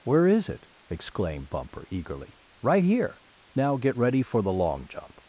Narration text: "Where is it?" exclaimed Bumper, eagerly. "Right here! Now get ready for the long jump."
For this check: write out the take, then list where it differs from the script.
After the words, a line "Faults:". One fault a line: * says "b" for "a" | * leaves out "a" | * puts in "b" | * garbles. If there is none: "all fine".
"Where is it?" exclaimed Bumper, eagerly. "Right here! Now get ready for the long jump."
Faults:
all fine